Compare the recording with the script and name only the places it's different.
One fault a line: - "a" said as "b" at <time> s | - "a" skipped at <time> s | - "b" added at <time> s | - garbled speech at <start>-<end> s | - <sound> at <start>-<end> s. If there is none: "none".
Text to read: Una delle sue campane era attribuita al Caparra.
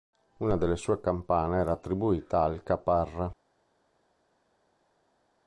none